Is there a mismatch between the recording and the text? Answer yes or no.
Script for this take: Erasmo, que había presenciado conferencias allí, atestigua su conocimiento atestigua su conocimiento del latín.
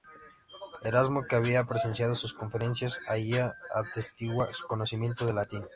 yes